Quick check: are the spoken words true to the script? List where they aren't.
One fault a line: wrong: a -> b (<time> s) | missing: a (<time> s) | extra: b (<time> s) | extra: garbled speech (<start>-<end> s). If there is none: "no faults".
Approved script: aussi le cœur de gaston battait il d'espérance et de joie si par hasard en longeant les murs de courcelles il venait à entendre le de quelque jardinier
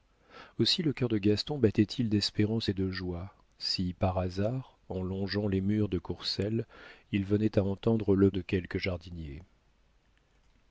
no faults